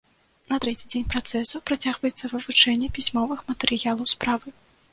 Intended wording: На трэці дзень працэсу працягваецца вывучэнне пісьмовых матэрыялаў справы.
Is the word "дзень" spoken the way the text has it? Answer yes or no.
yes